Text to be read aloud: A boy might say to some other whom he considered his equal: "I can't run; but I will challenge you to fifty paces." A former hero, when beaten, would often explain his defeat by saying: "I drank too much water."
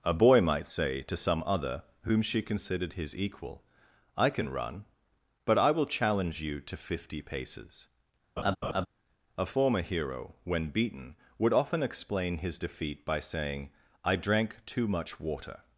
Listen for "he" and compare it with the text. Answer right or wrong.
wrong